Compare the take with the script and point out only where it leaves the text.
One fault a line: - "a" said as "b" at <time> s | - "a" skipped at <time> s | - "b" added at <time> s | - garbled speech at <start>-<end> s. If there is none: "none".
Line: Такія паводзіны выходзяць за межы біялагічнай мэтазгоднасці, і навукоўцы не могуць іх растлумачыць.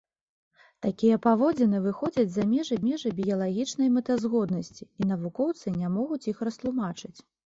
- "межы" added at 2.9 s